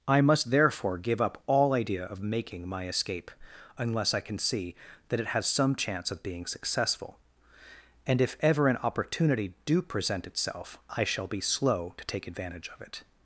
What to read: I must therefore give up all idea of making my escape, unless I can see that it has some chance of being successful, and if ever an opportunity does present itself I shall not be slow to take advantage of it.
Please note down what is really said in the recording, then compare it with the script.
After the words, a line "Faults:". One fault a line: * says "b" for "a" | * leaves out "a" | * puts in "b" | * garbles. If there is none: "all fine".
I must therefore give up all idea of making my escape, unless I can see that it has some chance of being successful, and if ever an opportunity do present itself I shall be slow to take advantage of it.
Faults:
* says "do" for "does"
* leaves out "not"